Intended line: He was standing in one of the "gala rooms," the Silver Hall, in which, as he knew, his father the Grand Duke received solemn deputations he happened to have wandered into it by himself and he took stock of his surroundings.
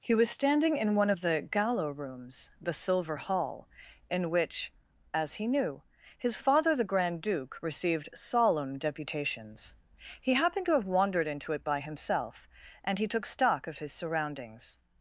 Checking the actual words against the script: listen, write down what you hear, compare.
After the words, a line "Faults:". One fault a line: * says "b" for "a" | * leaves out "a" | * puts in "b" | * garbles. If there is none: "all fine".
He was standing in one of the "gala rooms," the Silver Hall, in which, as he knew, his father the Grand Duke received solemn deputations he happened to have wandered into it by himself and he took stock of his surroundings.
Faults:
all fine